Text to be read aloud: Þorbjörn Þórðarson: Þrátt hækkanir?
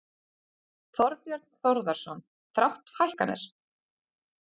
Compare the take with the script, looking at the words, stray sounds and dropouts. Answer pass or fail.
pass